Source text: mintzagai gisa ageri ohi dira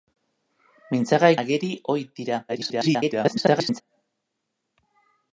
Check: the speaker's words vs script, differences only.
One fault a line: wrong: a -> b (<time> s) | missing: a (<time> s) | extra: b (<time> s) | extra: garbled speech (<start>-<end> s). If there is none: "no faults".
missing: gisa (1.3 s)
extra: garbled speech (2.5-3.8 s)